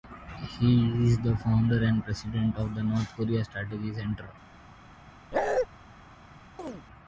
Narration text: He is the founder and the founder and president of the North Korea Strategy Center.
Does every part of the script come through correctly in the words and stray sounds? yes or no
no